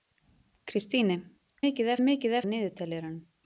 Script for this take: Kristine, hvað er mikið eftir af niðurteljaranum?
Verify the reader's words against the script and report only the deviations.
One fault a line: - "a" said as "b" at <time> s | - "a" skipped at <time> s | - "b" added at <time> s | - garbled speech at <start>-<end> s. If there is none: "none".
- "hvað" said as "mikið" at 1.6 s
- "eftir" skipped at 2.4 s